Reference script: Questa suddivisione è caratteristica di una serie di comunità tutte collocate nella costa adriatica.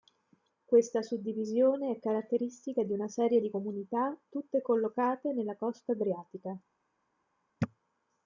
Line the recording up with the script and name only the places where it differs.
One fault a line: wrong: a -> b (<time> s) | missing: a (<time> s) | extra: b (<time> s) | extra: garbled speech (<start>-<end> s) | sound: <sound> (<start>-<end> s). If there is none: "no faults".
no faults